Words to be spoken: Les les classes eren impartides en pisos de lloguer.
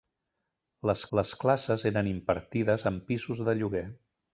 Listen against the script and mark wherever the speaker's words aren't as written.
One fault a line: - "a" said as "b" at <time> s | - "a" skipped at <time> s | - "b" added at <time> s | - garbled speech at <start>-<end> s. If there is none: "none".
none